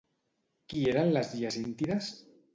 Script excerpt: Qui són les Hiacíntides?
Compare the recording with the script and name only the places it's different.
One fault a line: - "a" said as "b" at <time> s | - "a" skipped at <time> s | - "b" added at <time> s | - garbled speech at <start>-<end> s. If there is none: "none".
- "són" said as "eren" at 0.9 s